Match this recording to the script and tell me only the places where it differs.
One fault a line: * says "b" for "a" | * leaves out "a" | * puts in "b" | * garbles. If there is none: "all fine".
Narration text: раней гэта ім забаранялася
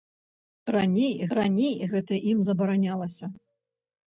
* puts in "раней"